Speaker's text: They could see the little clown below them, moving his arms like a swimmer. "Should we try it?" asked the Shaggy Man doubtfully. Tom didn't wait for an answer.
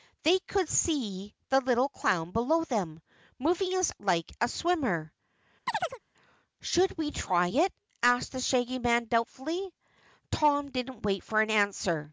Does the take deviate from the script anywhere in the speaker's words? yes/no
yes